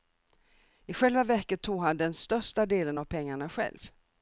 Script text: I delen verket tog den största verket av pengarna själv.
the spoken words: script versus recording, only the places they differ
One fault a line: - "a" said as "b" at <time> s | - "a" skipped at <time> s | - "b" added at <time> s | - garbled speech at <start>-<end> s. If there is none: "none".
- "delen" said as "själva" at 0.9 s
- "han" added at 1.8 s
- "verket" said as "delen" at 2.6 s